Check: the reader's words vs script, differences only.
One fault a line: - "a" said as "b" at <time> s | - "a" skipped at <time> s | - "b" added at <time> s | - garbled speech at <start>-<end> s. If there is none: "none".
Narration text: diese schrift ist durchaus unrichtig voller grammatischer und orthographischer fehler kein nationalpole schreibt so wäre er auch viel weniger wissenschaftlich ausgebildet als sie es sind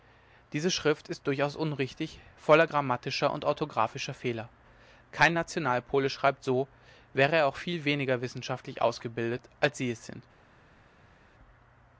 none